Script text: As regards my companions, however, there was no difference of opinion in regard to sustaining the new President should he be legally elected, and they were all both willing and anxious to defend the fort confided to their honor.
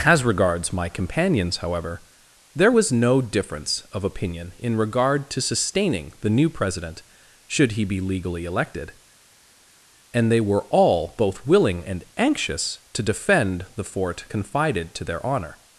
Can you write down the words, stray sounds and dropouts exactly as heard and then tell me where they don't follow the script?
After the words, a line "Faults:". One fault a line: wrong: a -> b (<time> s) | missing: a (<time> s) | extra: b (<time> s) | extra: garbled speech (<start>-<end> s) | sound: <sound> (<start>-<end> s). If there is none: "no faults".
As regards my companions, however, there was no difference of opinion in regard to sustaining the new President should he be legally elected, and they were all both willing and anxious to defend the fort confided to their honor.
Faults:
no faults